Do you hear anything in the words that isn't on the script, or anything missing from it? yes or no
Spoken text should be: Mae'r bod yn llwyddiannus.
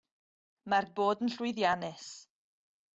no